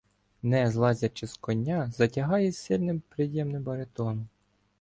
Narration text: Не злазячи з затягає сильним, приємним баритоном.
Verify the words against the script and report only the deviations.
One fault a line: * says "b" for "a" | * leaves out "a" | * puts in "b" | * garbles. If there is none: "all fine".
* puts in "коня"